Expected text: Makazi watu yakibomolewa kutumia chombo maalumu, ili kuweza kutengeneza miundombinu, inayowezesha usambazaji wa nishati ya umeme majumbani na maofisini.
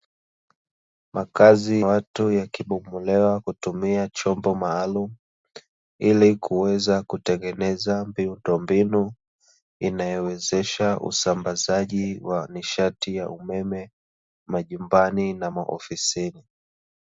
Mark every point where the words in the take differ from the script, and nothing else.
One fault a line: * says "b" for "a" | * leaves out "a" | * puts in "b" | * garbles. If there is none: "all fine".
all fine